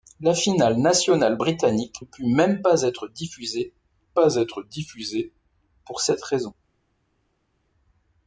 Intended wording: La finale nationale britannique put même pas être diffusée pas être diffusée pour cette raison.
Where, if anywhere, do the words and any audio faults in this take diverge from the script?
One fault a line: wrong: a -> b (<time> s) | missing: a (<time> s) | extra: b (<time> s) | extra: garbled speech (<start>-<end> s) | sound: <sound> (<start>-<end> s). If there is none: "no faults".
no faults